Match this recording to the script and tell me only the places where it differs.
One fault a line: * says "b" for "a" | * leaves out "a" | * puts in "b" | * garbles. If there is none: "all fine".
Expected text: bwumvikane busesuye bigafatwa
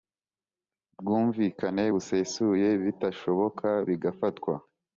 * puts in "bitashoboka"